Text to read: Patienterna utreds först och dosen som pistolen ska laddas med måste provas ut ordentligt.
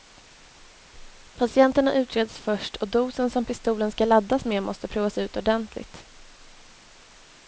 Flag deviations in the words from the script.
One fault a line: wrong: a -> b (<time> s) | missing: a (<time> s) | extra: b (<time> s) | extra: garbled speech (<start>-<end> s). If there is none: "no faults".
no faults